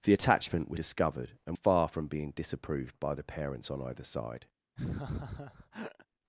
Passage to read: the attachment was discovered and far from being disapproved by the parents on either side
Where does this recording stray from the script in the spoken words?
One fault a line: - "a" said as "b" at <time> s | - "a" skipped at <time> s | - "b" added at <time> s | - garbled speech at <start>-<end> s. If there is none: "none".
none